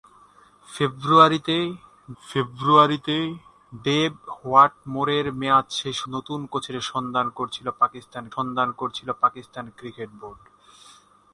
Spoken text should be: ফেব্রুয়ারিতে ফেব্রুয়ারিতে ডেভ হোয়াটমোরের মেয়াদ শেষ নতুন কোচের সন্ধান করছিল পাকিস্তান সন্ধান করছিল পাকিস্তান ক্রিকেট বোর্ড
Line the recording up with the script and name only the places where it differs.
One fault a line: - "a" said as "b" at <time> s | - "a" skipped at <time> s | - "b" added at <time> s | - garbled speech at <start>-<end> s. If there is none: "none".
none